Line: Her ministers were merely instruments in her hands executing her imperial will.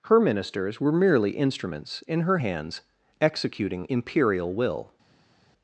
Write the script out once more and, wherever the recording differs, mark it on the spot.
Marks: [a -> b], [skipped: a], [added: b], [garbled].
Her ministers were merely instruments in her hands executing [skipped: her] imperial will.